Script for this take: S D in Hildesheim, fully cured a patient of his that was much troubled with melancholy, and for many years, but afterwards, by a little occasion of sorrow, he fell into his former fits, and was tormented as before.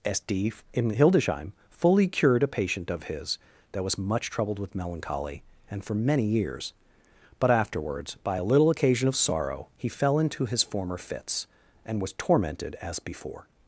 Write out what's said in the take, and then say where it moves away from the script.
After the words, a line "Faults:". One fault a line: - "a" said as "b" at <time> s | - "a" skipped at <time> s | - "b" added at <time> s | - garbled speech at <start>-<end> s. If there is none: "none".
S D in Hildesheim, fully cured a patient of his that was much troubled with melancholy, and for many years, but afterwards, by a little occasion of sorrow, he fell into his former fits, and was tormented as before.
Faults:
none